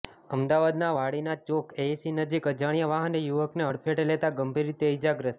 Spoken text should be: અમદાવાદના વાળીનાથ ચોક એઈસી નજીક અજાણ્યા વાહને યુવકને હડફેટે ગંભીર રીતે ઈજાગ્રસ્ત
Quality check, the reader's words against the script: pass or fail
fail